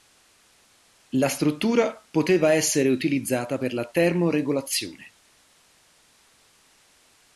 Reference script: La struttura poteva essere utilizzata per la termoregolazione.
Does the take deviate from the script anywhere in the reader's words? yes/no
no